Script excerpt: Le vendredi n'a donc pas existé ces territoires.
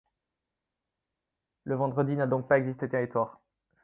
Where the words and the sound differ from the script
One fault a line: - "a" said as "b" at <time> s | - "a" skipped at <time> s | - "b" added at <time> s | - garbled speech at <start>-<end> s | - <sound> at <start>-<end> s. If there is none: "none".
none